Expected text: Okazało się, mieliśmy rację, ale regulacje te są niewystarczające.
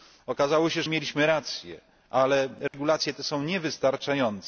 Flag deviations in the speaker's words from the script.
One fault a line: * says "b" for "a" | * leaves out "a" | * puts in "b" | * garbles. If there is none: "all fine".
all fine